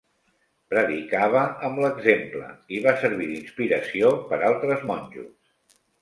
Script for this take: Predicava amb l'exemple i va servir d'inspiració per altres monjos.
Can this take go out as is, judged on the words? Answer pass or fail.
pass